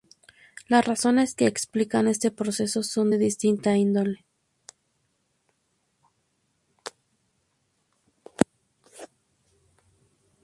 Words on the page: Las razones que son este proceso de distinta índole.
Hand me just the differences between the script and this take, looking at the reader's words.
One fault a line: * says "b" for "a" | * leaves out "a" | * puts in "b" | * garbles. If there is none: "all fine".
* says "explican" for "son"
* puts in "son"